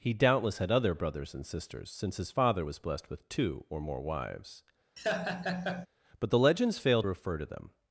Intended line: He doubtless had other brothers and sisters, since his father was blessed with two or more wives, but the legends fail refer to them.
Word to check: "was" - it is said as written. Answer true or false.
true